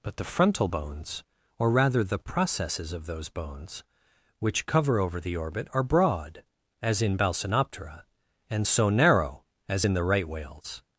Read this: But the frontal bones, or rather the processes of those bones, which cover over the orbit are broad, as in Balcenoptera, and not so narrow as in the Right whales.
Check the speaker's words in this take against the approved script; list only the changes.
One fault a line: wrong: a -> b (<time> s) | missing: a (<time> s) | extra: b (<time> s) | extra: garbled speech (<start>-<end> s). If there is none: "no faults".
missing: not (8.7 s)